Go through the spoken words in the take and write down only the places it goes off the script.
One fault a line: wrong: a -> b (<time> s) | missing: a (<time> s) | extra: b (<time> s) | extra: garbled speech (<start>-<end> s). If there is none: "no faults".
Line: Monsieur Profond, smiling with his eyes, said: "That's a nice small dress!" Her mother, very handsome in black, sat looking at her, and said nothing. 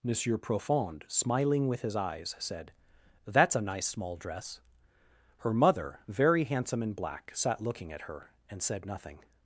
no faults